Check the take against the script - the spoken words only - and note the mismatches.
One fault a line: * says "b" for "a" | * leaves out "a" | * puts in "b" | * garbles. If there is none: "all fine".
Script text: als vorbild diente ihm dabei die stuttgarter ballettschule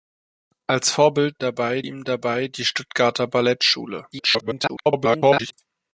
* says "dabei" for "diente"
* garbles